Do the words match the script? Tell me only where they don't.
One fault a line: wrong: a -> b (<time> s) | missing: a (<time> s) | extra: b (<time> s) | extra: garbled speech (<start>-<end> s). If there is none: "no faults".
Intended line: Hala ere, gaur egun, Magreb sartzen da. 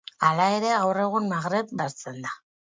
no faults